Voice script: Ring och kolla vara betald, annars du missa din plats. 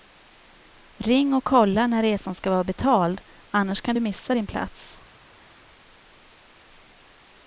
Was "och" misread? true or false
false